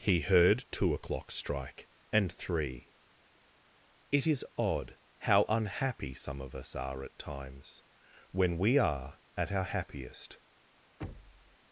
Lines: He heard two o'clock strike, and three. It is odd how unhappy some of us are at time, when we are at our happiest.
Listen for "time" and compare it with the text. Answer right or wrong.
wrong